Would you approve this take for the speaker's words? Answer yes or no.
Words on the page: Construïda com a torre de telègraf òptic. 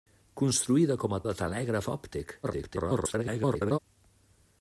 no